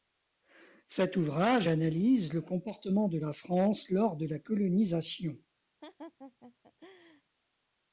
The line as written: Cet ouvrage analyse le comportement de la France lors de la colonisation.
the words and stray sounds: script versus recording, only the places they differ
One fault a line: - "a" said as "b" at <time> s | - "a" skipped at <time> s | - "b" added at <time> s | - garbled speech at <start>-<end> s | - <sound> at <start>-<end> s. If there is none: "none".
- laugh at 5.8-7.2 s